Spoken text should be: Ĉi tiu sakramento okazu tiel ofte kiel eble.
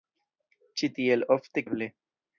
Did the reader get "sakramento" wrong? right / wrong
wrong